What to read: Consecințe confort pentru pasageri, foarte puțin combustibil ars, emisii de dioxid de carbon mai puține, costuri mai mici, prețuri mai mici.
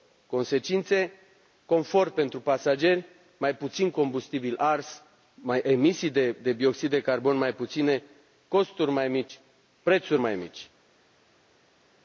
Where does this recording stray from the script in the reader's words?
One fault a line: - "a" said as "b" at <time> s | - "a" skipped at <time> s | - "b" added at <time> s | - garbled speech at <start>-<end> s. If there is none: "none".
- "foarte" said as "mai" at 3.4 s